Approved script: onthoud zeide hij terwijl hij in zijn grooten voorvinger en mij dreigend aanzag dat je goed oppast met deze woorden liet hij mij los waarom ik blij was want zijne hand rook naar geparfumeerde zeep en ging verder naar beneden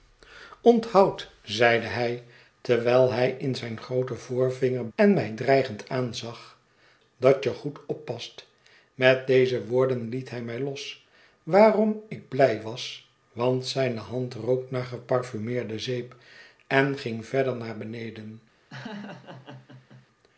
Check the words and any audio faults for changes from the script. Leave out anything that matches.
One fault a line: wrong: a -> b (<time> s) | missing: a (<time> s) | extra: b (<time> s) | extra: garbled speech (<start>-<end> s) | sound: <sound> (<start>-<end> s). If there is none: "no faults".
sound: laugh (18.7-20.1 s)